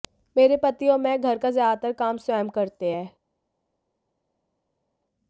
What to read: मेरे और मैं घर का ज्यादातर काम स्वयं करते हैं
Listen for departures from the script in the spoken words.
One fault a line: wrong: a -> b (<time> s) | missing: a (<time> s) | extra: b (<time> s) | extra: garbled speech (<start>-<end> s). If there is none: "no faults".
extra: पति (0.6 s)